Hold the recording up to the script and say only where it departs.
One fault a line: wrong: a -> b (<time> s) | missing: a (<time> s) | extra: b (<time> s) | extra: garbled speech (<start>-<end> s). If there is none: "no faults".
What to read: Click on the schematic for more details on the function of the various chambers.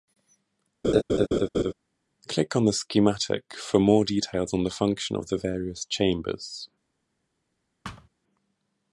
no faults